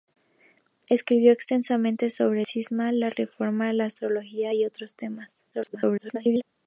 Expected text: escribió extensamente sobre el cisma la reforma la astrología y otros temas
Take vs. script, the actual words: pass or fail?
fail